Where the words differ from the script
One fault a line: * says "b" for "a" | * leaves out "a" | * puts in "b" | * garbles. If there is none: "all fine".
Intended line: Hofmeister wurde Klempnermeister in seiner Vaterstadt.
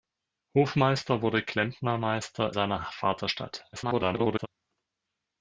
* leaves out "in"
* garbles